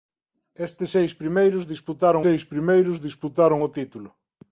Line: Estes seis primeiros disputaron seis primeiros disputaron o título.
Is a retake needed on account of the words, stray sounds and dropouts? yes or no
no